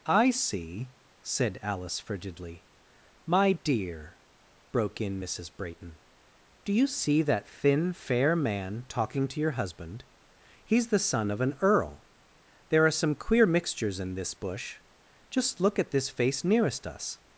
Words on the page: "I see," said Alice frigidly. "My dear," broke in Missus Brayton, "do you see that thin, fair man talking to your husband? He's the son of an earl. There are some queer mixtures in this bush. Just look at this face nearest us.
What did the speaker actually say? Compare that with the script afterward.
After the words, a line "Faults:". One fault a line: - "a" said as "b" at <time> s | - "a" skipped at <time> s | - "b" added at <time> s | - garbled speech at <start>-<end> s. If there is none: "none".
"I see," said Alice frigidly. "My dear," broke in Missus Brayton, "do you see that thin, fair man talking to your husband? He's the son of an earl. There are some queer mixtures in this bush. Just look at this face nearest us.
Faults:
none